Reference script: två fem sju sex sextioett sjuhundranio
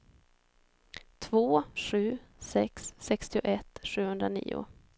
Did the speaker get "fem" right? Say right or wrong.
wrong